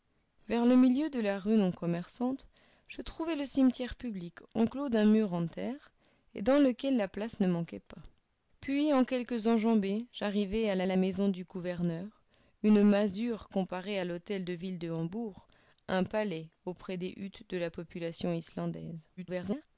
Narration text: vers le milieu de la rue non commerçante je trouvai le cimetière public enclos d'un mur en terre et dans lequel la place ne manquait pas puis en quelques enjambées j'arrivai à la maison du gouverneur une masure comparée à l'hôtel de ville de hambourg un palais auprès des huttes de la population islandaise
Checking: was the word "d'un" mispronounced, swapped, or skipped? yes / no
no